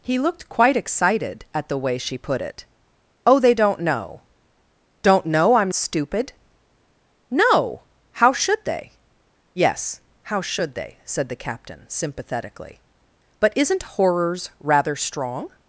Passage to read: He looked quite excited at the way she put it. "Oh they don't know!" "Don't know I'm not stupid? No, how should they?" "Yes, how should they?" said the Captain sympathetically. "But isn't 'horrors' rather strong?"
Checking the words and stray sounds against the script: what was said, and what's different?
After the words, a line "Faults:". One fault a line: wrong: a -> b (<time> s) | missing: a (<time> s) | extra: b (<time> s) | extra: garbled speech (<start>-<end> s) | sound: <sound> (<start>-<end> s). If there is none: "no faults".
He looked quite excited at the way she put it. "Oh they don't know!" "Don't know I'm stupid? No, how should they?" "Yes, how should they?" said the Captain sympathetically. "But isn't 'horrors' rather strong?"
Faults:
missing: not (5.7 s)